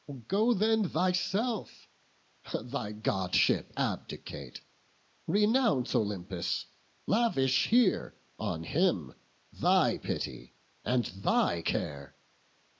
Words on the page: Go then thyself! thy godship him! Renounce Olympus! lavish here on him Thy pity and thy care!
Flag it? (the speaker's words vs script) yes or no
yes